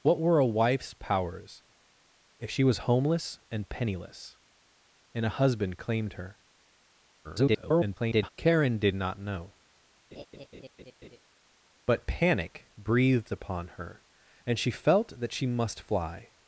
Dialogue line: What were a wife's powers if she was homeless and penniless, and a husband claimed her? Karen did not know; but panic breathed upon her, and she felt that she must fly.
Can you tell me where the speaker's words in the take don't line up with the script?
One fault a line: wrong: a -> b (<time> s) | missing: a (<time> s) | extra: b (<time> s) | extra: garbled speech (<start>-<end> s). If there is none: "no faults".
extra: garbled speech (7.2-8.3 s)